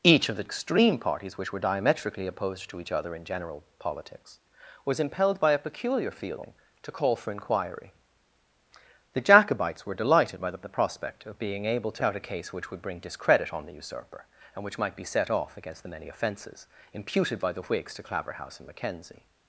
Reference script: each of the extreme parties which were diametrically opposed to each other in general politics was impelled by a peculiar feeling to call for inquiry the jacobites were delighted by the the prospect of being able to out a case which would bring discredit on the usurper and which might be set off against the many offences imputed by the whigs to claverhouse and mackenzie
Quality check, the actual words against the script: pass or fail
pass